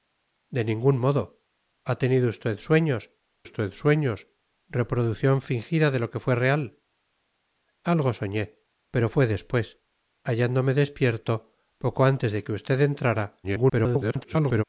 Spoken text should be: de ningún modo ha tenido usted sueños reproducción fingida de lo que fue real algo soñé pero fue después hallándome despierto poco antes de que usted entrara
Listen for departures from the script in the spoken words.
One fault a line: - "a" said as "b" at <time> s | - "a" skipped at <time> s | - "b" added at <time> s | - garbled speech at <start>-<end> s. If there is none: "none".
- "usted sueños" added at 3.4 s
- garbled speech at 13.4-14.6 s